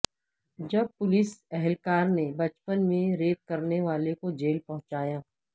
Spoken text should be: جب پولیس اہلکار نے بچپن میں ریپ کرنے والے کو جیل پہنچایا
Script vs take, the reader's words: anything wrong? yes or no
no